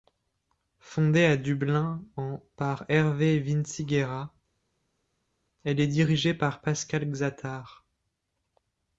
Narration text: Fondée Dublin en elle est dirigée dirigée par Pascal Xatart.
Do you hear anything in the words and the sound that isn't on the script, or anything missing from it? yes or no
yes